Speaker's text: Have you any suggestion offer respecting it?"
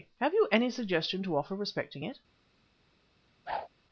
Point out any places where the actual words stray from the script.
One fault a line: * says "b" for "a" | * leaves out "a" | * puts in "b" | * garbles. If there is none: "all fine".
* puts in "to"